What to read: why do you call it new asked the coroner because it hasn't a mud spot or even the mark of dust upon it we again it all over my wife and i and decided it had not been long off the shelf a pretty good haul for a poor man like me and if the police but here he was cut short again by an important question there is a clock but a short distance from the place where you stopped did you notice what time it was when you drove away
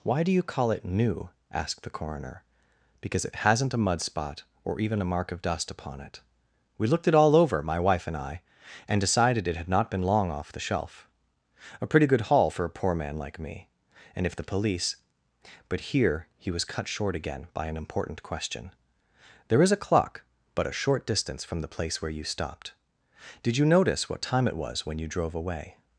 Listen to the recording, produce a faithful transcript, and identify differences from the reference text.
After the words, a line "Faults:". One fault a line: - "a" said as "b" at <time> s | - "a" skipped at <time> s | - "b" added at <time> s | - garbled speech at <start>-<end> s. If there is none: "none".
why do you call it new asked the coroner because it hasn't a mud spot or even a mark of dust upon it we looked it all over my wife and i and decided it had not been long off the shelf a pretty good haul for a poor man like me and if the police but here he was cut short again by an important question there is a clock but a short distance from the place where you stopped did you notice what time it was when you drove away
Faults:
- "the" said as "a" at 5.0 s
- "again" said as "looked" at 6.9 s